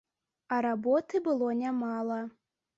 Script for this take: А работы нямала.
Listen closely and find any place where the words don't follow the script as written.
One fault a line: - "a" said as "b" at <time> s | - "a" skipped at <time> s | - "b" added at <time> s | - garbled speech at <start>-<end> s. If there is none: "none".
- "было" added at 1.2 s